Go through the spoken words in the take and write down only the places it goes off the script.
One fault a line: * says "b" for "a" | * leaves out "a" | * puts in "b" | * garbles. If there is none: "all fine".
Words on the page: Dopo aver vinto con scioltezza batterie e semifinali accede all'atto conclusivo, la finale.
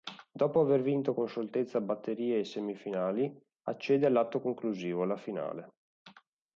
all fine